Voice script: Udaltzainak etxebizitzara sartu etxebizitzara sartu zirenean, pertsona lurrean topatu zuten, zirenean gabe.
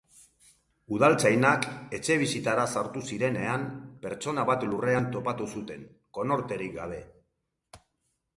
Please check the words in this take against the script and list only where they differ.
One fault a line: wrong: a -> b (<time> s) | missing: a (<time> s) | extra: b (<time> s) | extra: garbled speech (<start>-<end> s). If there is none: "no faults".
missing: etxebizitzara sartu (3.0 s)
extra: bat (4.5 s)
wrong: zirenean -> konorterik (6.2 s)